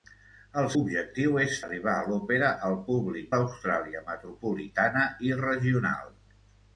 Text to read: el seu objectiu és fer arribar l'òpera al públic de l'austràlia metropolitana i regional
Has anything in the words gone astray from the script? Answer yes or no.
yes